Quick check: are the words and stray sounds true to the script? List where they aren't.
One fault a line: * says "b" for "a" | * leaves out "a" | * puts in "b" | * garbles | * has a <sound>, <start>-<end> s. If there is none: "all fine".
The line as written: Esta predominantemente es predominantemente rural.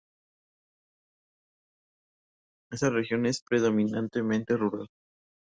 * says "región" for "predominantemente"